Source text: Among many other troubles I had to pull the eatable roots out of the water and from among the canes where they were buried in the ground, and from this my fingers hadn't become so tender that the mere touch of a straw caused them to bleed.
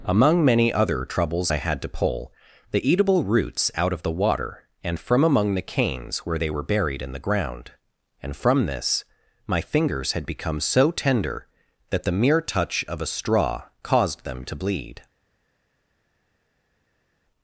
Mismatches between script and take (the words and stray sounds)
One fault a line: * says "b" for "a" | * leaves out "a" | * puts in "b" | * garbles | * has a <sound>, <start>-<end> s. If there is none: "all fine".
* says "had" for "hadn't"